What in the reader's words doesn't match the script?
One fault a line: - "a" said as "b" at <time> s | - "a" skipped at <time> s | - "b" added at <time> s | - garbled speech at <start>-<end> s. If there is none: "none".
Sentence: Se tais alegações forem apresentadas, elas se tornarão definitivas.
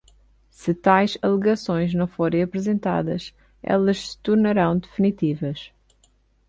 - "não" added at 1.9 s